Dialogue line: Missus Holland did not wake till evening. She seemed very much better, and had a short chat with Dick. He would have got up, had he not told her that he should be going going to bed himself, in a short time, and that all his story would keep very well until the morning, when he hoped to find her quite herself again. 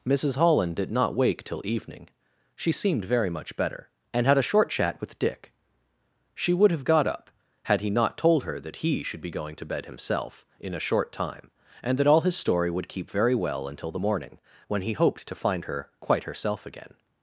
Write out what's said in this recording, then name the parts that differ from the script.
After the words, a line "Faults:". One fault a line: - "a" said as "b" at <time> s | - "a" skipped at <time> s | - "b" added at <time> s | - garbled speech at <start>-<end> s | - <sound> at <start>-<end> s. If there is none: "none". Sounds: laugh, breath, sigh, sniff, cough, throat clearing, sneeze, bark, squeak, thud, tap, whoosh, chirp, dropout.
Missus Holland did not wake till evening. She seemed very much better, and had a short chat with Dick. She would have got up, had he not told her that he should be going to bed himself, in a short time, and that all his story would keep very well until the morning, when he hoped to find her quite herself again.
Faults:
- "He" said as "She" at 6.3 s
- "going" skipped at 9.6 s